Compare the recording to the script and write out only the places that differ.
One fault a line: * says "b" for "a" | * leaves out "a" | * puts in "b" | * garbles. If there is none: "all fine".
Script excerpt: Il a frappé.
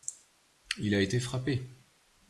* puts in "été"